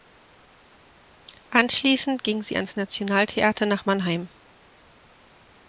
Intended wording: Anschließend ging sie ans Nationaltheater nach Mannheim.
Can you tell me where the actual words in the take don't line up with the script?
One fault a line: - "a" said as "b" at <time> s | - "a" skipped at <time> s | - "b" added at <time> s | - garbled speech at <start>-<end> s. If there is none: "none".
none